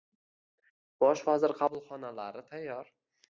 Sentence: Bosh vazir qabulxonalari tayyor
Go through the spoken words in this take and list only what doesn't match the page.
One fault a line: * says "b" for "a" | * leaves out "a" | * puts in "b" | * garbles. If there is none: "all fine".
all fine